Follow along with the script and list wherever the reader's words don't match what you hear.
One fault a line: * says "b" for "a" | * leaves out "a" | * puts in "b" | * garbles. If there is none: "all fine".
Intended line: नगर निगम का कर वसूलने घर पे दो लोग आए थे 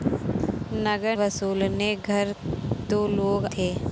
* leaves out "निगम का कर"
* leaves out "पे"
* leaves out "आए"